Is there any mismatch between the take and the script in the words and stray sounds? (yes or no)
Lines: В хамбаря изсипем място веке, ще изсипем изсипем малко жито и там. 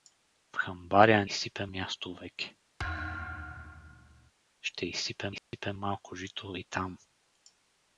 yes